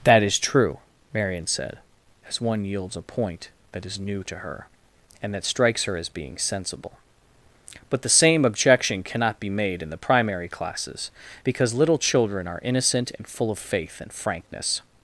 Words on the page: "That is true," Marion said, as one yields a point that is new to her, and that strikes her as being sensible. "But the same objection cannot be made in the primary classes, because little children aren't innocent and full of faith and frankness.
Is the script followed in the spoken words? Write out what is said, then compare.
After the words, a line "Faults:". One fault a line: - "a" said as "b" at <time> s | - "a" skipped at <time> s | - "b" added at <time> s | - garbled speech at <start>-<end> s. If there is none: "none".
"That is true," Marion said, as one yields a point that is new to her, and that strikes her as being sensible. "But the same objection cannot be made in the primary classes, because little children are innocent and full of faith and frankness.
Faults:
- "aren't" said as "are" at 12.5 s